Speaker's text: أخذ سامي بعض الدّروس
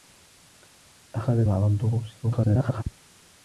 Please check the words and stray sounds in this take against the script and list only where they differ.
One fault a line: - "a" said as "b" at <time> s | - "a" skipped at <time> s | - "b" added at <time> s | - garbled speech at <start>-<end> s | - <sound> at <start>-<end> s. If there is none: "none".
- "سامي" skipped at 1.4 s
- garbled speech at 2.2-2.8 s